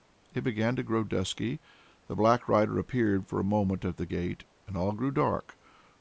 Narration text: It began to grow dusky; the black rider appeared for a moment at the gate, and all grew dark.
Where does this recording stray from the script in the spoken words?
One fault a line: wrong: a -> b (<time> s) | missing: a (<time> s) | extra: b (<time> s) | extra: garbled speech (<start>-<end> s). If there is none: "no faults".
no faults